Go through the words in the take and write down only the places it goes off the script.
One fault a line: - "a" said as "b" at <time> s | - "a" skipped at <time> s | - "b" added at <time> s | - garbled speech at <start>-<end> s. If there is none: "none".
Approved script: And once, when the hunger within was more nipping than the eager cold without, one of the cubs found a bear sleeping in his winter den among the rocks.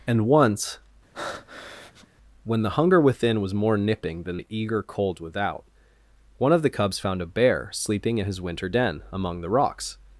none